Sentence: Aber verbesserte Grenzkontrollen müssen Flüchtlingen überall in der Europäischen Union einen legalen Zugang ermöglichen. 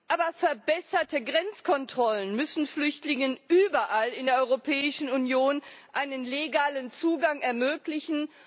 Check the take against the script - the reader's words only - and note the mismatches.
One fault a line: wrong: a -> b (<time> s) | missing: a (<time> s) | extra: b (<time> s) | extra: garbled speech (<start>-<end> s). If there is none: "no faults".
no faults